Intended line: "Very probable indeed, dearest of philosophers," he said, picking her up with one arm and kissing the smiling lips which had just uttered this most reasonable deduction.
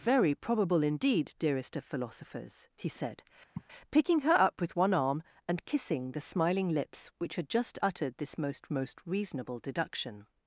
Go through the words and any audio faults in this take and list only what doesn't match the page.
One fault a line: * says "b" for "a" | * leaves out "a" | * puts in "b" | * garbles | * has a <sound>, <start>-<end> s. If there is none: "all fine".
* has a sigh, 3.5-3.6 s
* puts in "most"